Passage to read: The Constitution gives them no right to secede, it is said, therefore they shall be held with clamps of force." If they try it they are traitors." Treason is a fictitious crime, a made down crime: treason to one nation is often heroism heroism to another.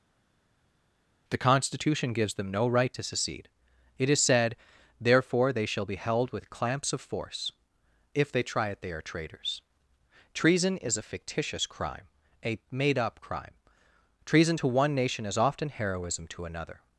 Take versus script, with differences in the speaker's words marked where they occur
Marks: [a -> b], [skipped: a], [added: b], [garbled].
The Constitution gives them no right to secede, it is said, therefore they shall be held with clamps of force." If they try it they are traitors." Treason is a fictitious crime, a made [down -> up] crime: treason to one nation is often heroism [skipped: heroism] to another.